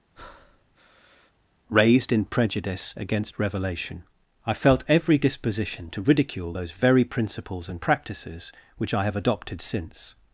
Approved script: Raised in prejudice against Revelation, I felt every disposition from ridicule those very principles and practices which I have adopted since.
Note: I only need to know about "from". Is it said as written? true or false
false